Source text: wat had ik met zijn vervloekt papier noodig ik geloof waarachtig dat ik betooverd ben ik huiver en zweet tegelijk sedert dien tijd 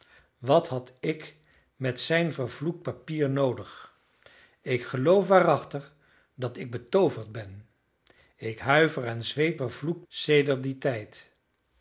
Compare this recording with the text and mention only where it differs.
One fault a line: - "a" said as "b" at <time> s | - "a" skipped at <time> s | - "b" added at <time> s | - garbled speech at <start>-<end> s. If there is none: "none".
- "tegelijk" said as "vervloekt" at 9.5 s